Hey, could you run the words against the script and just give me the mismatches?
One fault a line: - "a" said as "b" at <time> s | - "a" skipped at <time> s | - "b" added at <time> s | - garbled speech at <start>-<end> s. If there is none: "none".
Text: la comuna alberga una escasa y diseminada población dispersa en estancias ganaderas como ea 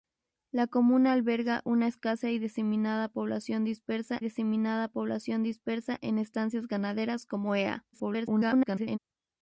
- "diseminada población dispersa" added at 4.2 s
- garbled speech at 7.9-9.0 s